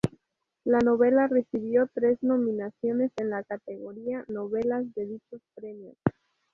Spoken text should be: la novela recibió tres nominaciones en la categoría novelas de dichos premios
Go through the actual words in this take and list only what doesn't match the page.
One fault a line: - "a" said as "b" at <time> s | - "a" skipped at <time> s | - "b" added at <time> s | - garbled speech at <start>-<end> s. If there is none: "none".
none